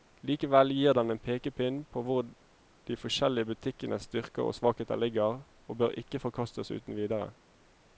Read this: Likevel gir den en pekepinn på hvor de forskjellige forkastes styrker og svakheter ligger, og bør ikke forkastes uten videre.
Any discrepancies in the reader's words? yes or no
yes